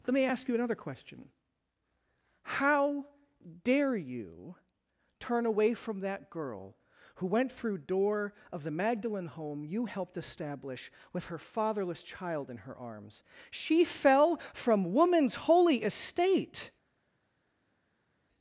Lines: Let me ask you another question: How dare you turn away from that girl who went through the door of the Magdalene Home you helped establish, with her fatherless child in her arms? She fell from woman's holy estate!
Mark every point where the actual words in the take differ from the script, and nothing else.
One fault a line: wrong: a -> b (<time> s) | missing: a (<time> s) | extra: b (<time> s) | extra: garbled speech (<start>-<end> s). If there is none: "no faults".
missing: the (7.8 s)